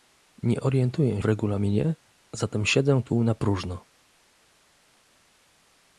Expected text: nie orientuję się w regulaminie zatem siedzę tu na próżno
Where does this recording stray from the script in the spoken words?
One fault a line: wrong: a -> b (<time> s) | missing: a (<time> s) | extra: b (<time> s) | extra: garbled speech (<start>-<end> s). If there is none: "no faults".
missing: się (1.2 s)